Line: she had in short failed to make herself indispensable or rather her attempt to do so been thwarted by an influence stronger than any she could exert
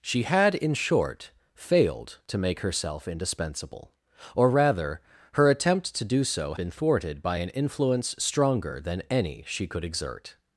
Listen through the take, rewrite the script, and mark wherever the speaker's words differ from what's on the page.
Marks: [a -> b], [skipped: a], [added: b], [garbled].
she had in short failed to make herself indispensable or rather her attempt to do so been thwarted by an influence stronger than any she could exert